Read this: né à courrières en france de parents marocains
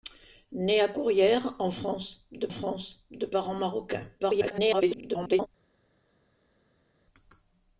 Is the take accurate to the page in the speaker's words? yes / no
no